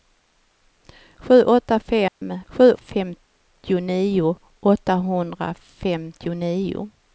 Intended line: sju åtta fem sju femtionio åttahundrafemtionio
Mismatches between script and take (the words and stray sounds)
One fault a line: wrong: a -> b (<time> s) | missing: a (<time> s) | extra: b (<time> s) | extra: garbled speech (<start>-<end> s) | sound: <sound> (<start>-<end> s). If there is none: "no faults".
sound: dropout (2.1-2.2 s)